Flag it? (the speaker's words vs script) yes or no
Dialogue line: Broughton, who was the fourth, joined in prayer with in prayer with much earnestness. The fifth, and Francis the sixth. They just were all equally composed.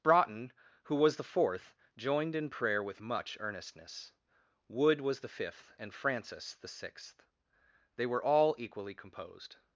yes